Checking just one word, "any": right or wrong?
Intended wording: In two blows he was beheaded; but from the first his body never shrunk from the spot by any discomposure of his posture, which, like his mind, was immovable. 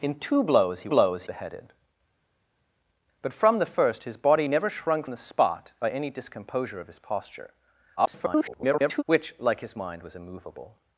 right